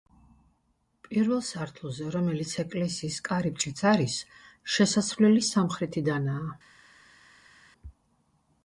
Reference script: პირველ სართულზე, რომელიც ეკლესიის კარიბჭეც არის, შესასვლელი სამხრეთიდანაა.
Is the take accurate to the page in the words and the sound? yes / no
yes